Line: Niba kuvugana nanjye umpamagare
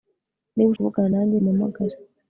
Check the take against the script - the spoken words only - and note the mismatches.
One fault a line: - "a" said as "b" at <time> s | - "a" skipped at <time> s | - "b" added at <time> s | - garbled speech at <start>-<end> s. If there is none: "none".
none